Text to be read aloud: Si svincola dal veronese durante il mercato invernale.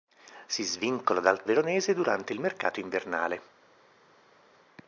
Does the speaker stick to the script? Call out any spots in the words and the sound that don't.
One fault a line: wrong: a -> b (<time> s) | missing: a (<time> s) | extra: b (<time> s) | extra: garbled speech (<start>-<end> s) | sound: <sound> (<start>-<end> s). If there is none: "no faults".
no faults